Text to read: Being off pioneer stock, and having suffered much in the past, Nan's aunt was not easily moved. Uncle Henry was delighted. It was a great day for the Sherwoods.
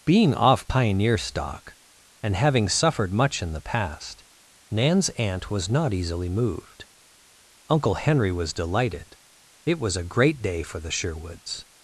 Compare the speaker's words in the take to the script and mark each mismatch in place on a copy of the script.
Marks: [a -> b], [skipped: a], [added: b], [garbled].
Being off pioneer stock, and having suffered much in the past, Nan's aunt was not easily moved. Uncle Henry was delighted. It was a great day for the Sherwoods.